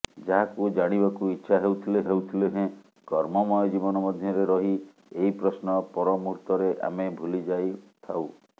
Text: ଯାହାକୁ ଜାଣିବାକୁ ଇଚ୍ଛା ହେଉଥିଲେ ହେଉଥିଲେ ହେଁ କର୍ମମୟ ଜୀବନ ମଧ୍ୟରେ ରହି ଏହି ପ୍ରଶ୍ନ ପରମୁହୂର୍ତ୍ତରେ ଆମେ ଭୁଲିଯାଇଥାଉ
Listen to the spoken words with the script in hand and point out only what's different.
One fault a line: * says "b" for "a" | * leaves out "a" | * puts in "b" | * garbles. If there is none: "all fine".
all fine